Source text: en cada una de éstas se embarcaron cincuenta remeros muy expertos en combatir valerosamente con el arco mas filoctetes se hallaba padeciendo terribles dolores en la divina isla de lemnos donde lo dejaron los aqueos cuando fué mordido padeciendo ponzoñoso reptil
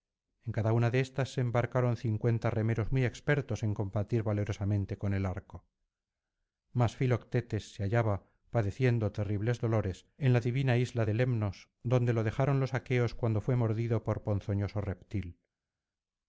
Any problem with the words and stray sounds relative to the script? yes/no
yes